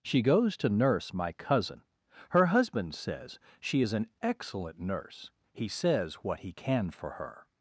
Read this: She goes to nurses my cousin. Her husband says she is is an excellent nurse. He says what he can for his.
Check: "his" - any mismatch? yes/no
yes